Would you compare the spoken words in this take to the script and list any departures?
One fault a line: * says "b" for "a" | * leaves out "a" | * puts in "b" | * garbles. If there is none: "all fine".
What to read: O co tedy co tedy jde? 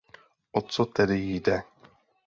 * leaves out "co tedy"